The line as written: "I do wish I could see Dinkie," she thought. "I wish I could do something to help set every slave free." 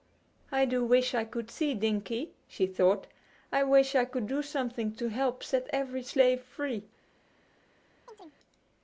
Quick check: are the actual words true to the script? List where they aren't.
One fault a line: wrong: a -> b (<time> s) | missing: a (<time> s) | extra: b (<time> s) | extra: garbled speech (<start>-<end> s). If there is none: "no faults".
no faults